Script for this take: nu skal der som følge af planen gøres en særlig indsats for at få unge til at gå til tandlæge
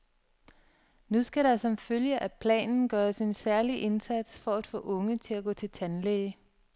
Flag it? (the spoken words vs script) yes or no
no